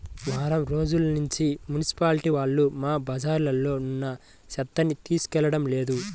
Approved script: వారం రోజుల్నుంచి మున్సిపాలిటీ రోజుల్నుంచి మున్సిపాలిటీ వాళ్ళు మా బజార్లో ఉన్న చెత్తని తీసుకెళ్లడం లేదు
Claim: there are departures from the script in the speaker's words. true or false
true